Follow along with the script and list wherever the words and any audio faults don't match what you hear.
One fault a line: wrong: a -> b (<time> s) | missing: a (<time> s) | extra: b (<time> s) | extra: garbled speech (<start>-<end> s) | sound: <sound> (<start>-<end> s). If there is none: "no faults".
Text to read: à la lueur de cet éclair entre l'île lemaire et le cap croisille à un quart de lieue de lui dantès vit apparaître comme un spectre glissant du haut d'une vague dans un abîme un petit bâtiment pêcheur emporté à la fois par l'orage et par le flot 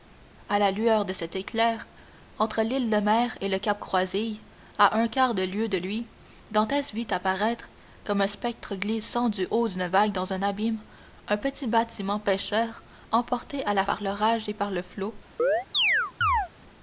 missing: fois (13.8 s)
sound: chirp (15.4-16.5 s)